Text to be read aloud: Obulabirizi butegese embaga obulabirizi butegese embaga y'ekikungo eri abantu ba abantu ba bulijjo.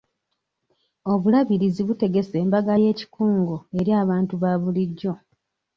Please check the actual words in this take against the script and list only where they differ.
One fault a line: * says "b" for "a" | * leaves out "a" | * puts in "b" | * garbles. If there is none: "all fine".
* leaves out "obulabirizi butegese embaga"
* leaves out "abantu ba"